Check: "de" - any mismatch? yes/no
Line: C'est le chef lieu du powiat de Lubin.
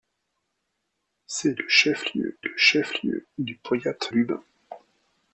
yes